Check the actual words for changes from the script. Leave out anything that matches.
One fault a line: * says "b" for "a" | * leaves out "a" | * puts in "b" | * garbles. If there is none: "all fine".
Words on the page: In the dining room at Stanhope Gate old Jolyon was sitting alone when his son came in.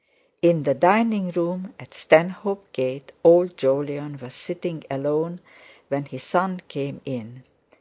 all fine